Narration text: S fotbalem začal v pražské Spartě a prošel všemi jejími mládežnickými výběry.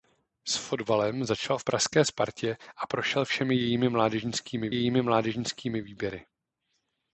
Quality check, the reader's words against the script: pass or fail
fail